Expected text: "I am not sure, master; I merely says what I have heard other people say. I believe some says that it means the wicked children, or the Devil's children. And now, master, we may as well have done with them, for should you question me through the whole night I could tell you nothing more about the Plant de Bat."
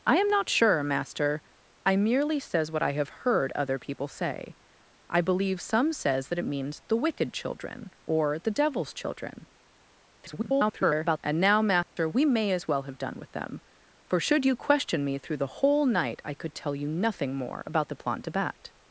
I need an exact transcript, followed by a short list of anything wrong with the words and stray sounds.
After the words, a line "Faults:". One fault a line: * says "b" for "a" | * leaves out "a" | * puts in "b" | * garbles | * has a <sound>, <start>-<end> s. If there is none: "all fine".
"I am not sure, master; I merely says what I have heard other people say. I believe some says that it means the wicked children, or the Devil's children. [garbled] And now, master, we may as well have done with them, for should you question me through the whole night I could tell you nothing more about the Plant de Bat."
Faults:
* garbles
* has a dropout, 11.8-12.0 s